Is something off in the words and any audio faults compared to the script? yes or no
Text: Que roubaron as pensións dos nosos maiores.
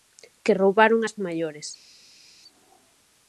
yes